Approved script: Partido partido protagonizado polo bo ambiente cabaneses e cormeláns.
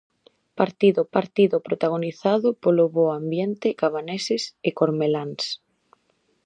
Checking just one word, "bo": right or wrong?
right